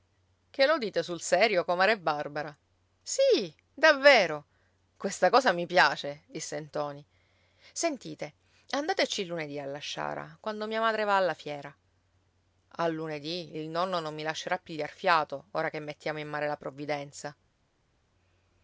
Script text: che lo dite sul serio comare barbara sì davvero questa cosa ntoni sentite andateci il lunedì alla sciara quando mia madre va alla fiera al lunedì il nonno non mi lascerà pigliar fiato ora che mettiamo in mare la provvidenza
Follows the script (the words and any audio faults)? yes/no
no